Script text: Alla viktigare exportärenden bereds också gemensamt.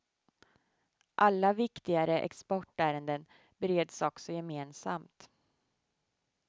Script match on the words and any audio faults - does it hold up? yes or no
yes